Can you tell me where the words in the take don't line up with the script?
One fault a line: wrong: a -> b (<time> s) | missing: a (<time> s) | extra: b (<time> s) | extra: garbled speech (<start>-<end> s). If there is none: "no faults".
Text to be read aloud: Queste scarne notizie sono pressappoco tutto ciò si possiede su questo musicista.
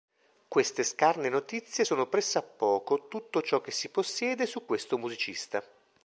extra: che (3.6 s)